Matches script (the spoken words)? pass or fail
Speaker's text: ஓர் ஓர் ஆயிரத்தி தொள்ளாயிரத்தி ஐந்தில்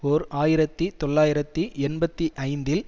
fail